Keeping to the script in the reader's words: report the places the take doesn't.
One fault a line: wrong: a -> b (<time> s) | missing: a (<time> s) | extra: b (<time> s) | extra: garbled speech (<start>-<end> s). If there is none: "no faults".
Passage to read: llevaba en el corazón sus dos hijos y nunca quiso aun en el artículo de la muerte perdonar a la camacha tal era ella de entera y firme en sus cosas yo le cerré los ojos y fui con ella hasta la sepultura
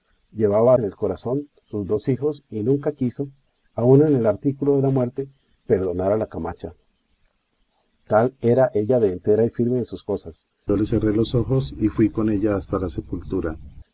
no faults